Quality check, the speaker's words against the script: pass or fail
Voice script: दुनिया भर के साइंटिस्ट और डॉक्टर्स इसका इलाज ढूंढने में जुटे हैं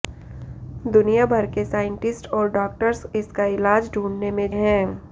fail